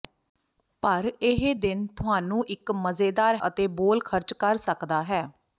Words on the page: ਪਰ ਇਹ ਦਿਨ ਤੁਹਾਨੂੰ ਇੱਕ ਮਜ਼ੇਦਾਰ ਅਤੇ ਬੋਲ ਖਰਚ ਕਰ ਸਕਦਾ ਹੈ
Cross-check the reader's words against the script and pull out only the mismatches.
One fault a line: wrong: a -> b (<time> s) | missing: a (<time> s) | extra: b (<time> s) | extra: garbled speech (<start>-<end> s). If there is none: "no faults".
no faults